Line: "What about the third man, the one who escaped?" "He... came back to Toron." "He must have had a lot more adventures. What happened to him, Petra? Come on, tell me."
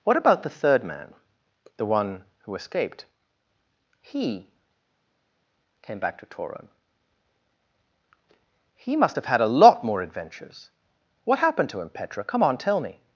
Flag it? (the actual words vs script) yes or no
no